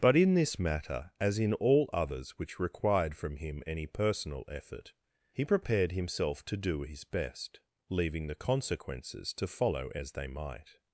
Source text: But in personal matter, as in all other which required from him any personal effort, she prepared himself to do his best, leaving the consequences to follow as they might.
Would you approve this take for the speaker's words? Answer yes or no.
no